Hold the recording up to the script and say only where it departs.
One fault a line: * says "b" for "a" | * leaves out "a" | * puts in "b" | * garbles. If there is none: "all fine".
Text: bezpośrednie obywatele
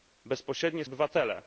all fine